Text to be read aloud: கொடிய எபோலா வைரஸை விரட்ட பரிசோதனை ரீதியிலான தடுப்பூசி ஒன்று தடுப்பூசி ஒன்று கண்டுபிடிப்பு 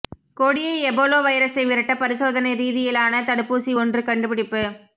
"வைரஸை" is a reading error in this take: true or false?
false